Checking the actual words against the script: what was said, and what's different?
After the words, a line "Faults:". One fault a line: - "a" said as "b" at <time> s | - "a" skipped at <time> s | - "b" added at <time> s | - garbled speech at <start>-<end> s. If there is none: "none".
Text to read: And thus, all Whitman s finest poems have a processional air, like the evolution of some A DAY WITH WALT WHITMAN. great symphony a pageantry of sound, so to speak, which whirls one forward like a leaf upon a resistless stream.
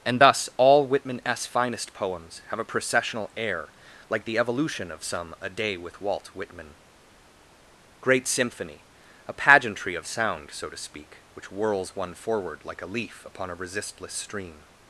And thus, all Whitman s finest poems have a processional air, like the evolution of some A DAY WITH WALT WHITMAN. great symphony a pageantry of sound, so to speak, which whirls one forward like a leaf upon a resistless stream.
Faults:
none